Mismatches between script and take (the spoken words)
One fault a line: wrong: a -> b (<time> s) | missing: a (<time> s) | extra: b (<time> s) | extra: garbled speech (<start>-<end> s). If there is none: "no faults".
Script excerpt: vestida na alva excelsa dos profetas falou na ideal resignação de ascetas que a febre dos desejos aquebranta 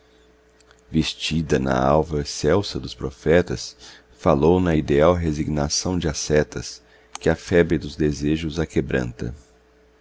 no faults